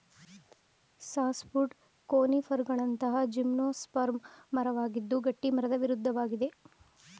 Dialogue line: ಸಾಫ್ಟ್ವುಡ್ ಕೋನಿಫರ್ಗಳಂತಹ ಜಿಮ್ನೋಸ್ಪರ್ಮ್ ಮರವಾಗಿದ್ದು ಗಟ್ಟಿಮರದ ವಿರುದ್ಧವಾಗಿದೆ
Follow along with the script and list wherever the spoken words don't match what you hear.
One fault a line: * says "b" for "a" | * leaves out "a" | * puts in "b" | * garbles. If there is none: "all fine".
all fine